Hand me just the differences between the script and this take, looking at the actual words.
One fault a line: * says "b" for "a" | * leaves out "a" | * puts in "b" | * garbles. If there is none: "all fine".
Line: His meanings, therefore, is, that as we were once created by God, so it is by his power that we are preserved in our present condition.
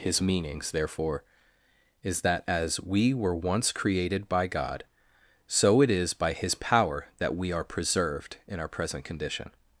all fine